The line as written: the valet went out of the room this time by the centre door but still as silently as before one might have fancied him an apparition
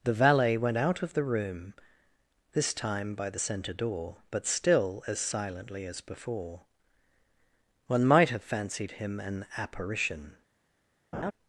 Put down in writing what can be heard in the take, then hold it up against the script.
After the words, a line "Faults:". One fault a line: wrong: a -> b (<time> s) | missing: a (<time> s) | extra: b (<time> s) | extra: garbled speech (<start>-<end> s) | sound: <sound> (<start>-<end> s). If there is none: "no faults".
the valet went out of the room this time by the centre door but still as silently as before one might have fancied him an apparition
Faults:
sound: laugh (11.1-11.3 s)